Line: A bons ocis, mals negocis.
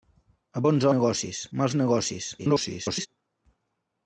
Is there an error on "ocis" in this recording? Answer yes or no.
yes